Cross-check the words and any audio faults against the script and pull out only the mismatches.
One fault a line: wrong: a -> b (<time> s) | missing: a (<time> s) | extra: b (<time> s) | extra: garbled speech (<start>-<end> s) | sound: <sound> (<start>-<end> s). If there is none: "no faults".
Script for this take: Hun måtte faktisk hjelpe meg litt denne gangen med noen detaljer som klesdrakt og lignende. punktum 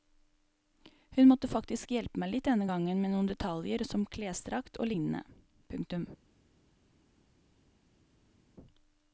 no faults